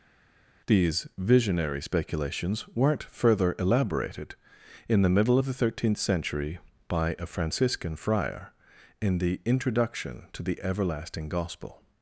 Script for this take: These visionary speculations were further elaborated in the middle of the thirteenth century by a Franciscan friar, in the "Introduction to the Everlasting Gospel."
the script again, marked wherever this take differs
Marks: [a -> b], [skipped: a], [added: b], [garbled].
These visionary speculations [were -> weren't] further elaborated in the middle of the thirteenth century by a Franciscan friar, in the "Introduction to the Everlasting Gospel."